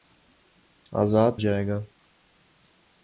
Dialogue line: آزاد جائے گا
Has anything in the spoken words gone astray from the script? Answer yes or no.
no